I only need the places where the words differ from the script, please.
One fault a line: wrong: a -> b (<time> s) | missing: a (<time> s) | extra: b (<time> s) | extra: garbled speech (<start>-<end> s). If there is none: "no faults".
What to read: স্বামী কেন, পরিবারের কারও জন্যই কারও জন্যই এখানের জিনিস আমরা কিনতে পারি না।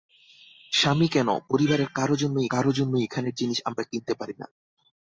no faults